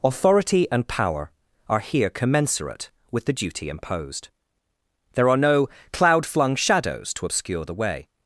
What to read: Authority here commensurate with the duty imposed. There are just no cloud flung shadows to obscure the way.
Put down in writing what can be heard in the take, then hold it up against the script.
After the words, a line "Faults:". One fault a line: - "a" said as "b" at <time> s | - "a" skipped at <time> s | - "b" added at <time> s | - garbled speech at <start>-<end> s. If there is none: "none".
Authority and power are here commensurate with the duty imposed. There are no cloud flung shadows to obscure the way.
Faults:
- "and power are" added at 0.7 s
- "just" skipped at 5.4 s